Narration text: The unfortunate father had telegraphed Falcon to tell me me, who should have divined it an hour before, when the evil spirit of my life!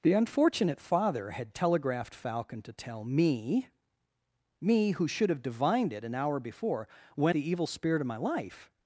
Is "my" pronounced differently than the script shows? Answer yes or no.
no